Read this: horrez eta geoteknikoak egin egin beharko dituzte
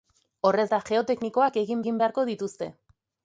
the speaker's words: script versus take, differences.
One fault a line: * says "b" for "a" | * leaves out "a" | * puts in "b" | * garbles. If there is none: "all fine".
all fine